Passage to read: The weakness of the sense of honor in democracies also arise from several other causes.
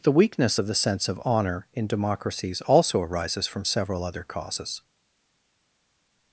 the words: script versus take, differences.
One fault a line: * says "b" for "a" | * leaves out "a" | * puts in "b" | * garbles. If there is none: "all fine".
* says "arises" for "arise"